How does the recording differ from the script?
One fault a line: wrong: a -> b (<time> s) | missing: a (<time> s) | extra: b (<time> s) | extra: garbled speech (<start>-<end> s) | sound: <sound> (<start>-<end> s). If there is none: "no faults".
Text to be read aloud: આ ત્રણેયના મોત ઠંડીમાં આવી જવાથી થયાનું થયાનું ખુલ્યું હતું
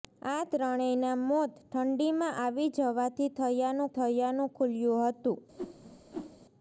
sound: whoosh (5.6-6.4 s)